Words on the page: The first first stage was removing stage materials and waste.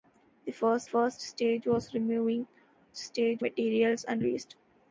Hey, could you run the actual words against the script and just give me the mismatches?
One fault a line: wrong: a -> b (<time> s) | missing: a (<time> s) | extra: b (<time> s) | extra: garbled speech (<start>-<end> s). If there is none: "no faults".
no faults